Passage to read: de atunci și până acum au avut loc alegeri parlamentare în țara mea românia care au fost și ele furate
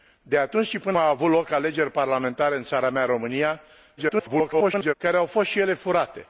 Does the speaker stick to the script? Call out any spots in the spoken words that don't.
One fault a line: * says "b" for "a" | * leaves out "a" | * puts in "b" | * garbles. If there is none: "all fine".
* leaves out "acum"
* garbles